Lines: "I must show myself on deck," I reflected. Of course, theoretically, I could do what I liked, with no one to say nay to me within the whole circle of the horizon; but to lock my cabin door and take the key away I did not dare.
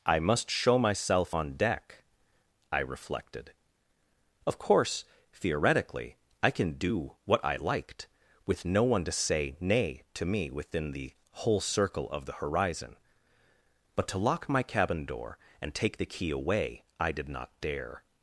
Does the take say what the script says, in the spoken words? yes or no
no